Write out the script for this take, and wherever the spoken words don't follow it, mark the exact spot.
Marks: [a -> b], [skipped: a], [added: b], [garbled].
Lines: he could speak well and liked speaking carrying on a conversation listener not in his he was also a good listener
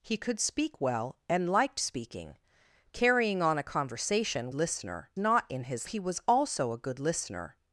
he could speak well and liked speaking carrying on a conversation listener not in his he was also a good listener